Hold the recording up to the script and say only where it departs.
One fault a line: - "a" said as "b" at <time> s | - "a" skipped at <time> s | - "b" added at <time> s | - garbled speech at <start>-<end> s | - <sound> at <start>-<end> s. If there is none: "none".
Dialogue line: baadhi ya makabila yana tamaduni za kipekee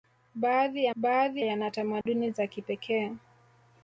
- "makabila" said as "baadhi" at 1.0 s
- dropout at 2.0-2.1 s